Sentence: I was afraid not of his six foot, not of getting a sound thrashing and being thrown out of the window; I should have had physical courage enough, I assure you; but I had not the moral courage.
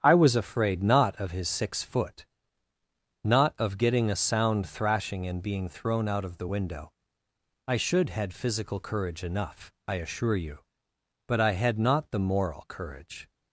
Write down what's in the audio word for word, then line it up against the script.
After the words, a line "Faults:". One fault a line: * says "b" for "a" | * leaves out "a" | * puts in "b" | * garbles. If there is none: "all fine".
I was afraid not of his six foot, not of getting a sound thrashing and being thrown out of the window; I should had physical courage enough, I assure you; but I had not the moral courage.
Faults:
* leaves out "have"